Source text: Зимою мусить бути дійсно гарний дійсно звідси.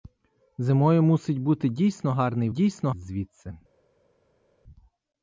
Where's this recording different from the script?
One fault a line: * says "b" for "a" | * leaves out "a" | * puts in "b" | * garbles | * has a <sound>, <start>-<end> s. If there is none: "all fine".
all fine